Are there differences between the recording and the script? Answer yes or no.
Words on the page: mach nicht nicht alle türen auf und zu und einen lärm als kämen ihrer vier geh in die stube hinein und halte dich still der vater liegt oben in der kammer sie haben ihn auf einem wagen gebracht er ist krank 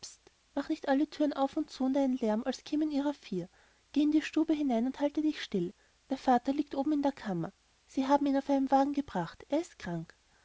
yes